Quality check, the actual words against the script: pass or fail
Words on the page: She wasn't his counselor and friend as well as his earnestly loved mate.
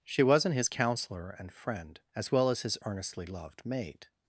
pass